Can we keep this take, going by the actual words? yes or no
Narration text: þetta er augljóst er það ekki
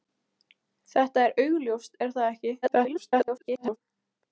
no